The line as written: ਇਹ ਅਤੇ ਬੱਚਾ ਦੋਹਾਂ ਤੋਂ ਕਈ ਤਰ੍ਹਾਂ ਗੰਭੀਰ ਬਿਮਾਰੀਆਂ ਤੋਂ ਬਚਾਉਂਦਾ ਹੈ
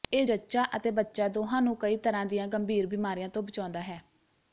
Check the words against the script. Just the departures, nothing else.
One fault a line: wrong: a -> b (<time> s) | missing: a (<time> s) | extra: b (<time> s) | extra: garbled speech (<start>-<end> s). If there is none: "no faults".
extra: ਜੱਚਾ (0.2 s)
wrong: ਤੋਂ -> ਨੂੰ (1.6 s)
extra: ਦੀਆਂ (2.3 s)